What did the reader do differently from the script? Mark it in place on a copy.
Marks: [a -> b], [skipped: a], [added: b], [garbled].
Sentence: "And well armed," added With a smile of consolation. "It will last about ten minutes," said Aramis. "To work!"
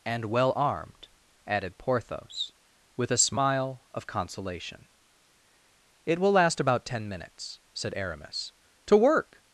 "And well armed," added [added: Porthos] With a smile of consolation. "It will last about ten minutes," said Aramis. "To work!"